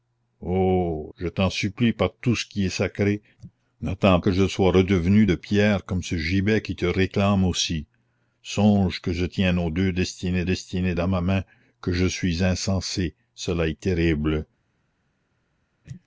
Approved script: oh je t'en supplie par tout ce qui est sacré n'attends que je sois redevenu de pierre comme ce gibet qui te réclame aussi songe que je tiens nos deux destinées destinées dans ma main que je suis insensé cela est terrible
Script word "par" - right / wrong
right